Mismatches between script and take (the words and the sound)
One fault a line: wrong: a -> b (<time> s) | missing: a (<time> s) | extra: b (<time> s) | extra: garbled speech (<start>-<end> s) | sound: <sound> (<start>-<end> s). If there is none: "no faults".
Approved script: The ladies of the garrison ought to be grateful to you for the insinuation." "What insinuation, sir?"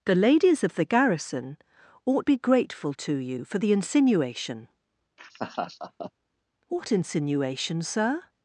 missing: to (2.3 s)
sound: laugh (5.2-6.1 s)